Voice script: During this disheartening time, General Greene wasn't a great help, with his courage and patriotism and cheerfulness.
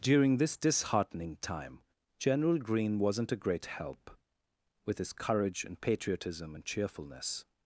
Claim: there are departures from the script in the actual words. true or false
false